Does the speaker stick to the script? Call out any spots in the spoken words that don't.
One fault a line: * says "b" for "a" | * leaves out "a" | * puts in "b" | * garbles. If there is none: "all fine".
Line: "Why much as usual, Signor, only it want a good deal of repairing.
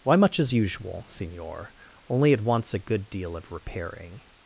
* says "wants" for "want"